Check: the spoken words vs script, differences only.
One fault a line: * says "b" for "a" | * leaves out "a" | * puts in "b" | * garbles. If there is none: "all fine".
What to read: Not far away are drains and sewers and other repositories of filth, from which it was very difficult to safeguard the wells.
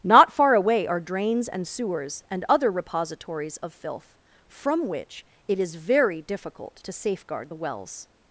* says "is" for "was"